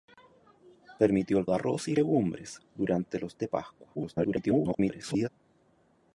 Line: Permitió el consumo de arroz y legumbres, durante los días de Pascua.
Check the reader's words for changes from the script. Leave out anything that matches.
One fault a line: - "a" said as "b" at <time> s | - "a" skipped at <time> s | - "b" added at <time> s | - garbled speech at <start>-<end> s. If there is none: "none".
- "consumo" skipped at 1.4 s
- "días" skipped at 3.4 s
- garbled speech at 4.0-5.3 s